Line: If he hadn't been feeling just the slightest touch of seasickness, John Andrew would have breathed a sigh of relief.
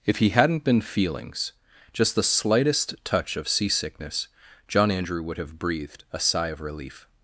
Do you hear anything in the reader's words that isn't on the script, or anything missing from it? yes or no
yes